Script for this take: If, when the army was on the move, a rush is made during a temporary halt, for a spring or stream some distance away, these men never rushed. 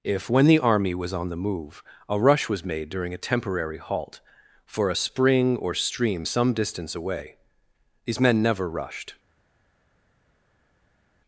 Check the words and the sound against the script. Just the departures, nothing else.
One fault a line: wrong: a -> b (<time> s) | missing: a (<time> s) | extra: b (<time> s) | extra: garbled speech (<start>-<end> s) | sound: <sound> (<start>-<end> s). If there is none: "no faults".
wrong: is -> was (2.5 s)